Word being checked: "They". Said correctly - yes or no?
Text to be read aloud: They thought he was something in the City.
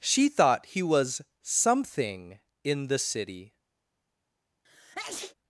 no